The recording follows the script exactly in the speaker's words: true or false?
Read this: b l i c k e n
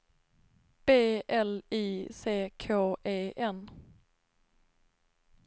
true